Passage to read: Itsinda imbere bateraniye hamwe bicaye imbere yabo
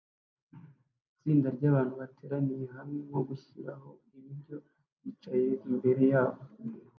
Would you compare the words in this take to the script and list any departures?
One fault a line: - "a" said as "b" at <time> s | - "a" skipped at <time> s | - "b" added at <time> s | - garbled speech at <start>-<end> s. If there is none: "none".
- "imbere" said as "ryabantu" at 1.5 s
- "nko gushiraho ibiryo" added at 3.1 s